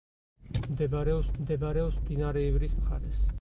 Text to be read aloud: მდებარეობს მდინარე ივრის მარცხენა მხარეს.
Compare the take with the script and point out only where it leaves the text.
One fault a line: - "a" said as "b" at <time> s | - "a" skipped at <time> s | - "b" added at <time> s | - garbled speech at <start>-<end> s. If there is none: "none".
- "მდებარეობს" added at 1.4 s
- "მარცხენა" skipped at 2.8 s